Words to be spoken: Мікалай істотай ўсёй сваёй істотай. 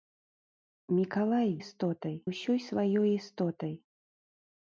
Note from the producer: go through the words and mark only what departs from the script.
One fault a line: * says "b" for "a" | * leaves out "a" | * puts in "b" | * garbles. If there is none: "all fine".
all fine